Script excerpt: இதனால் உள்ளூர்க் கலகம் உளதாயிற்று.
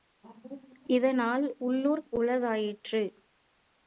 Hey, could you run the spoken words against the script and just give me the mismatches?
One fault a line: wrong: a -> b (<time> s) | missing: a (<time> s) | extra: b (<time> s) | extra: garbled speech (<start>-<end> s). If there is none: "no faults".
missing: கலகம் (2.1 s)